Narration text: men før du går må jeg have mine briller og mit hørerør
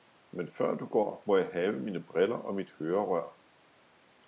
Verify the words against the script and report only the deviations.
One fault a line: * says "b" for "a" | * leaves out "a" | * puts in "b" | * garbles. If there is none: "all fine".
all fine